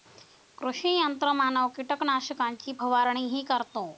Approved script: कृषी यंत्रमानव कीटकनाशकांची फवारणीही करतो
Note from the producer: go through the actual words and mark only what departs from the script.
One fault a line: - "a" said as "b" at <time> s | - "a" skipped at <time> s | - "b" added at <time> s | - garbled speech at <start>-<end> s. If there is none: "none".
none